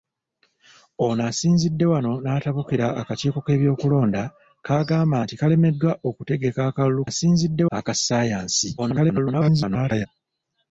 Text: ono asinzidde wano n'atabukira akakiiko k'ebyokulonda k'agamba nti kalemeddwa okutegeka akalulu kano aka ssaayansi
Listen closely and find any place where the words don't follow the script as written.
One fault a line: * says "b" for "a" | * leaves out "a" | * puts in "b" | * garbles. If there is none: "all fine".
* says "asinzidde" for "kano"
* garbles